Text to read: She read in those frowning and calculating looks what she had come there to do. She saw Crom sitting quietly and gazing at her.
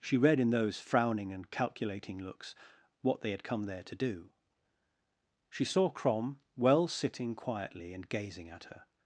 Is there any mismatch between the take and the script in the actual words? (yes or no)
yes